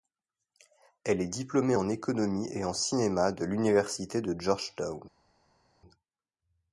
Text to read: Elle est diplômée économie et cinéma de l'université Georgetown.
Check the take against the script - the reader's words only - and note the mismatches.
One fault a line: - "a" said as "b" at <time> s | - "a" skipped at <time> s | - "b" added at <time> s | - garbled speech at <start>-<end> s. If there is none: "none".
- "en" added at 1.7 s
- "en" added at 2.6 s
- "de" added at 4.2 s